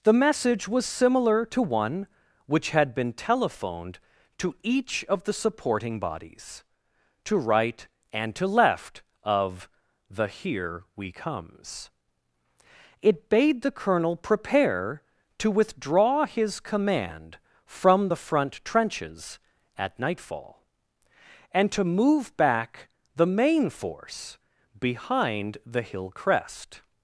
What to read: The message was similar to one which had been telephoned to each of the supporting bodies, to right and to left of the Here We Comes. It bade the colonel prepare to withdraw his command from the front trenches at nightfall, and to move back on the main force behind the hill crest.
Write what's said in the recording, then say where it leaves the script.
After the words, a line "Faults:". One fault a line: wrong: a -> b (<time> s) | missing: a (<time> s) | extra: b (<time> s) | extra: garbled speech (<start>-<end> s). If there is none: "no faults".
The message was similar to one which had been telephoned to each of the supporting bodies, to right and to left of the Here We Comes. It bade the colonel prepare to withdraw his command from the front trenches at nightfall, and to move back the main force behind the hill crest.
Faults:
missing: on (22.9 s)